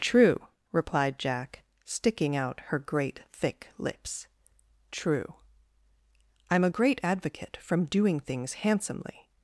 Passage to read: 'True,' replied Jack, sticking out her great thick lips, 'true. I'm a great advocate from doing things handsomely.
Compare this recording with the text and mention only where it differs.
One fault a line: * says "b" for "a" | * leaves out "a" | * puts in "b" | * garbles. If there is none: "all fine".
all fine